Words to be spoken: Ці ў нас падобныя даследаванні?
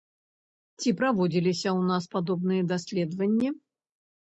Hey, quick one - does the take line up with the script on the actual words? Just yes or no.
no